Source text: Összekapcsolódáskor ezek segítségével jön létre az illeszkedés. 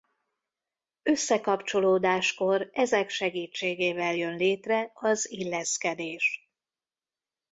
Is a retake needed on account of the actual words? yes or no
no